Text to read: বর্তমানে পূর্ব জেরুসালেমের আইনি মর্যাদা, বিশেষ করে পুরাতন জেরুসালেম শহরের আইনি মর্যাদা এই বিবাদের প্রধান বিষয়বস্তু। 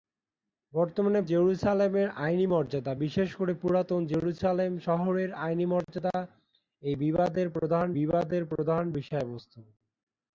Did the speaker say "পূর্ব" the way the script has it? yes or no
no